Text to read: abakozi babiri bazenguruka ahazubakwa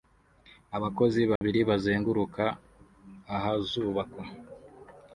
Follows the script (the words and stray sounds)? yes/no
no